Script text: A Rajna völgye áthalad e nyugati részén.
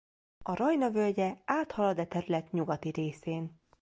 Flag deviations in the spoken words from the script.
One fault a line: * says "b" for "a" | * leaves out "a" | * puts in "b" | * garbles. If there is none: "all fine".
* puts in "terület"